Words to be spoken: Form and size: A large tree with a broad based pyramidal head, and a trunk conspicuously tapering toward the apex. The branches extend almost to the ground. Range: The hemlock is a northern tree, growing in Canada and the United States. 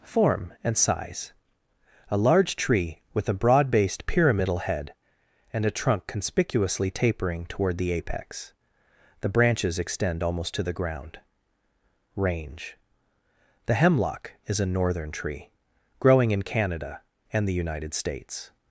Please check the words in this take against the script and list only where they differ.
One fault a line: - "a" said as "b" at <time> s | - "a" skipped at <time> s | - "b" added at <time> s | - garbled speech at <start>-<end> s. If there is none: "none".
none